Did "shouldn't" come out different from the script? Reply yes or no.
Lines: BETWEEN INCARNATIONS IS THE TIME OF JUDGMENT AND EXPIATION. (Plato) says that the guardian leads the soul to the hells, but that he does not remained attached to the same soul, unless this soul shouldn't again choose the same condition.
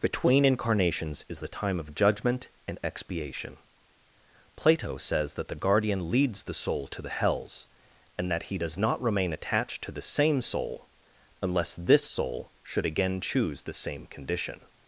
yes